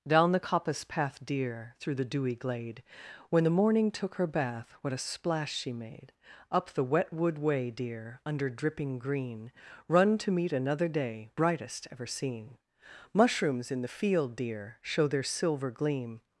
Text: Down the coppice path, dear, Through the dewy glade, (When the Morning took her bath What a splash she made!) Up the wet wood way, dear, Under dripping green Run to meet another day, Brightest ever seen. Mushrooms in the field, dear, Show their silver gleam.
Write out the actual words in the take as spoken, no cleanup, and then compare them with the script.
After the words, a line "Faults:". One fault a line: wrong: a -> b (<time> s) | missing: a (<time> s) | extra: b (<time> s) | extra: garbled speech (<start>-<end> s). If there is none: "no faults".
Down the coppice path, dear, Through the dewy glade, (When the Morning took her bath What a splash she made!) Up the wet wood way, dear, Under dripping green Run to meet another day, Brightest ever seen. Mushrooms in the field, dear, Show their silver gleam.
Faults:
no faults